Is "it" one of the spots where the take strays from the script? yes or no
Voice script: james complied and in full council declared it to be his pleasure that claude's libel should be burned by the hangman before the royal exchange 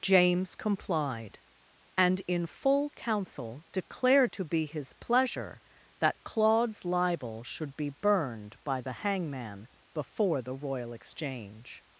yes